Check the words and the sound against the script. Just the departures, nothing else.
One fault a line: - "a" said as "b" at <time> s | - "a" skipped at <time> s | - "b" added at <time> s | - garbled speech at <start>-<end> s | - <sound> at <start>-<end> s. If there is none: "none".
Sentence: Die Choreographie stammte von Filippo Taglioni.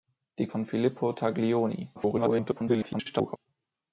- "Choreographie stammte" skipped at 0.5 s
- garbled speech at 2.0-3.4 s